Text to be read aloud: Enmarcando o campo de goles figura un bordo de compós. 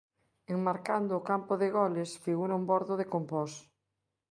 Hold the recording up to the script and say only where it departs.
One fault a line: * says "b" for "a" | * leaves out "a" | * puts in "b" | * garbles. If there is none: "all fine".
all fine